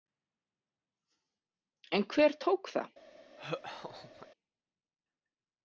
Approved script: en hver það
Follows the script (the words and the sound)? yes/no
no